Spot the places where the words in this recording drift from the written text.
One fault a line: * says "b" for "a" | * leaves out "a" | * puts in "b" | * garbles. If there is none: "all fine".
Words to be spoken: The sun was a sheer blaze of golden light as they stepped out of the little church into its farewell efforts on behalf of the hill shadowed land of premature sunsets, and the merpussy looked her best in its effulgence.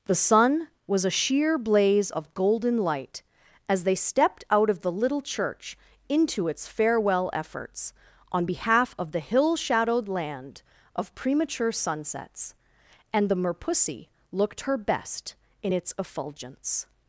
all fine